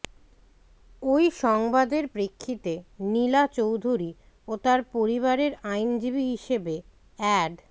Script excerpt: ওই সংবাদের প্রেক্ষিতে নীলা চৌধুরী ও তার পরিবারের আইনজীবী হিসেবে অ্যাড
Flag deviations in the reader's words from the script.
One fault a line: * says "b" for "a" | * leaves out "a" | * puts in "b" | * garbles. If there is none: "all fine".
all fine